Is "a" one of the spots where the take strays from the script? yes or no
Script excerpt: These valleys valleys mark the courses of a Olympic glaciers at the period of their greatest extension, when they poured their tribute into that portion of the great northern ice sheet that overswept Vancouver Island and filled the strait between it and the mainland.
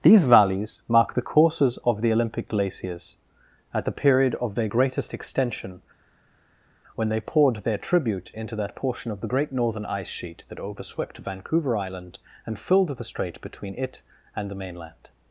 yes